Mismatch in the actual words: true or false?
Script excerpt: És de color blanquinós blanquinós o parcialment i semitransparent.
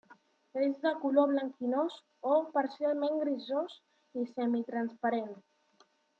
true